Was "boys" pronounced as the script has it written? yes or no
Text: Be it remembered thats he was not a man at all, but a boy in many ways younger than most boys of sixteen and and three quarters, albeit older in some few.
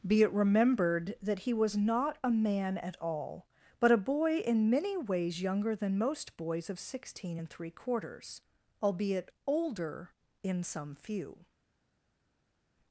yes